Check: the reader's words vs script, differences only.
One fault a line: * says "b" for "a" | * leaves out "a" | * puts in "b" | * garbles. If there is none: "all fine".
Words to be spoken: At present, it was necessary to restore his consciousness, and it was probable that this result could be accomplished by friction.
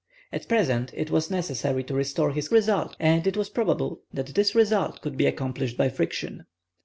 * says "result" for "consciousness"